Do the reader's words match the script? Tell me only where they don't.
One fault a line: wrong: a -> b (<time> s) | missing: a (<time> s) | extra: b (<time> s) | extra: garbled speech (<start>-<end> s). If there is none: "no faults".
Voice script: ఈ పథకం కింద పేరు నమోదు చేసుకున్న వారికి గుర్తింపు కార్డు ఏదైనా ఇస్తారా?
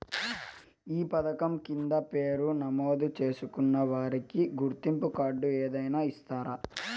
no faults